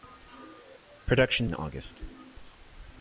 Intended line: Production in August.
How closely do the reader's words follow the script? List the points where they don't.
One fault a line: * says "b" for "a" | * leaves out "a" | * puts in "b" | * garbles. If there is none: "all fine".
all fine